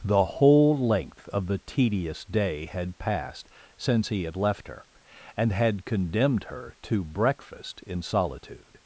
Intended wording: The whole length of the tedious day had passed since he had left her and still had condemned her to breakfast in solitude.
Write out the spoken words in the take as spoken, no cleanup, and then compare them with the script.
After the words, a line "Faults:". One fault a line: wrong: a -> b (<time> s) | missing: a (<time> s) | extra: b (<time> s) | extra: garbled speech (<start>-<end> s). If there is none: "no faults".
The whole length of the tedious day had passed since he had left her and had condemned her to breakfast in solitude.
Faults:
missing: still (5.5 s)